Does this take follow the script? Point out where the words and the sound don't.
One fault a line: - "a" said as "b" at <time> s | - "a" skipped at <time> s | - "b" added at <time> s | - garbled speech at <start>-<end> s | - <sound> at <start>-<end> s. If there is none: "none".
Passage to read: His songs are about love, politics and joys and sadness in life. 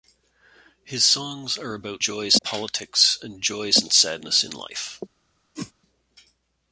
- "love" said as "joys" at 2.0 s
- whoosh at 5.6-5.7 s